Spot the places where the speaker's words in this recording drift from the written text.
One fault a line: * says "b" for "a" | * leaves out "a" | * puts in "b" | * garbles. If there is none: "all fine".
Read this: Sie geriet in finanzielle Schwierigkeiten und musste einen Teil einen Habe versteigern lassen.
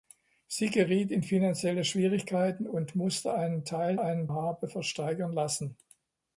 all fine